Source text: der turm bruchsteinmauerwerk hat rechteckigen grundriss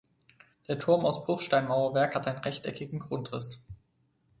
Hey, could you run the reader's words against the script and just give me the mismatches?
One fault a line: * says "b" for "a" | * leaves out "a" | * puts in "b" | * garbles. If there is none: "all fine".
* puts in "aus"
* puts in "einen"